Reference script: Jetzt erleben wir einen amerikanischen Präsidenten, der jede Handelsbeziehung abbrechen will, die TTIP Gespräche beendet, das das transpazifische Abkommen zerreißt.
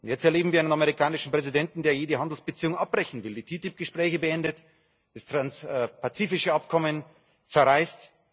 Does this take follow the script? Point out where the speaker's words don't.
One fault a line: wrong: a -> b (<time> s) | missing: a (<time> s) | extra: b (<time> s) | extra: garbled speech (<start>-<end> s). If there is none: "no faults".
missing: das (5.3 s)